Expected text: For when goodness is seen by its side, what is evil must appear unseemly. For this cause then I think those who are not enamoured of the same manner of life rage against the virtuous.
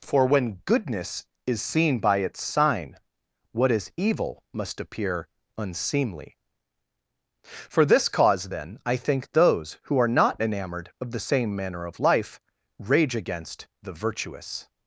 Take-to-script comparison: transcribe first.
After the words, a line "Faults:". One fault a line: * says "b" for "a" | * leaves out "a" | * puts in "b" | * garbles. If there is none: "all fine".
For when goodness is seen by its sign, what is evil must appear unseemly. For this cause then I think those who are not enamoured of the same manner of life rage against the virtuous.
Faults:
* says "sign" for "side"